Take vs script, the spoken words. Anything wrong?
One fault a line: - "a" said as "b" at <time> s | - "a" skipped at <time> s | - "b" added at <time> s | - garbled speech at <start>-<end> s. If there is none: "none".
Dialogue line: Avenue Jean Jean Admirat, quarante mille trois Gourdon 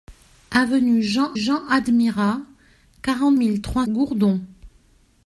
none